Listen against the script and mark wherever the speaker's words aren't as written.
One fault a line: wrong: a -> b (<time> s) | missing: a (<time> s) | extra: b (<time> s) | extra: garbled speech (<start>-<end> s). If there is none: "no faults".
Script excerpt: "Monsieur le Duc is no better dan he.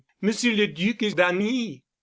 missing: no better (1.1 s)